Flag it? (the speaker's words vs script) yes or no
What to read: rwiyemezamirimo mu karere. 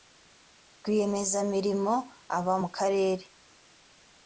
yes